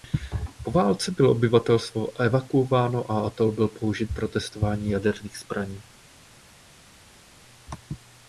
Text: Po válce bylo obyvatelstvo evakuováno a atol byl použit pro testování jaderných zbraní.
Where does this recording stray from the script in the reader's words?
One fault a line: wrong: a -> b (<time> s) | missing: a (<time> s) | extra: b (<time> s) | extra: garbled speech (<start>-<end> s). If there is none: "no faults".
no faults